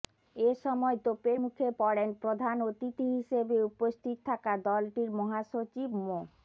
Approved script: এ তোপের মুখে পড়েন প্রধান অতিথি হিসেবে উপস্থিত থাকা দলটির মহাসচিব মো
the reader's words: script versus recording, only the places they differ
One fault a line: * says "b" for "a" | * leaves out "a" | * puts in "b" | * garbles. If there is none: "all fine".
* puts in "সময়"